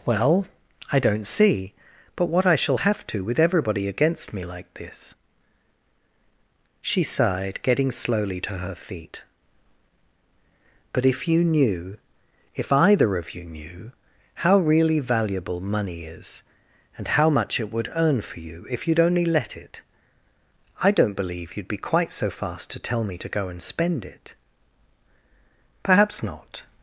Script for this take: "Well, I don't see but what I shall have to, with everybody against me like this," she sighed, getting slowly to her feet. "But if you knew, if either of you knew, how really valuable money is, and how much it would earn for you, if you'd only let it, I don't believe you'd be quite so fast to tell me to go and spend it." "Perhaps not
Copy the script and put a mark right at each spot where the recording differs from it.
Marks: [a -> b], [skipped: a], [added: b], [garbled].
"Well, I don't see but what I shall have to, with everybody against me like this," she sighed, getting slowly to her feet. "But if you knew, if either of you knew, how really valuable money is, and how much it would earn for you, if you'd only let it, I don't believe you'd be quite so fast to tell me to go and spend it." "Perhaps not